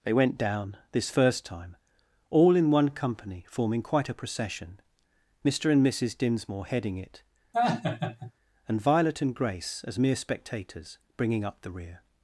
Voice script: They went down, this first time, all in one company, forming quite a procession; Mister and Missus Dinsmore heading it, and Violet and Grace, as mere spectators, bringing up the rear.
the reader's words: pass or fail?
pass